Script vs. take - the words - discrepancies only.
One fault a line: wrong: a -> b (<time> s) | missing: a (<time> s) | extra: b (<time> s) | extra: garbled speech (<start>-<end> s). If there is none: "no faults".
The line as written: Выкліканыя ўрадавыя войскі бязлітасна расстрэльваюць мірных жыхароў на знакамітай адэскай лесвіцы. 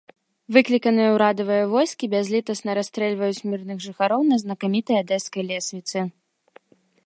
no faults